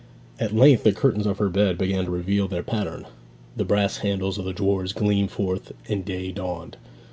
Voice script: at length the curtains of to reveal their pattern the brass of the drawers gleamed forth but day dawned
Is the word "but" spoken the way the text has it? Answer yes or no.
no